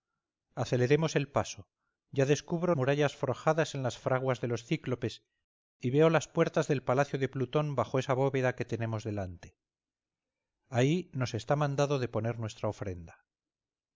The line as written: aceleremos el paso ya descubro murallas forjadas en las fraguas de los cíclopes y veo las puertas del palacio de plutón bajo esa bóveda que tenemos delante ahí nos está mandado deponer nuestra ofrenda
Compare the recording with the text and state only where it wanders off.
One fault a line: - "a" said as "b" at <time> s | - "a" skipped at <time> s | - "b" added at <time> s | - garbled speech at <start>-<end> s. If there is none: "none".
none